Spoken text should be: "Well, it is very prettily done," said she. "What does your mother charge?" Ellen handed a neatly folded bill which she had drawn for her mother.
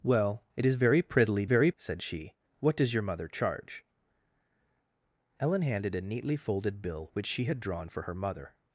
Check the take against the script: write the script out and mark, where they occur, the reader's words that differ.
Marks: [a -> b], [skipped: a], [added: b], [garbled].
"Well, it is very prettily [done," -> very] said she. "What does your mother charge?" Ellen handed a neatly folded bill which she had drawn for her mother.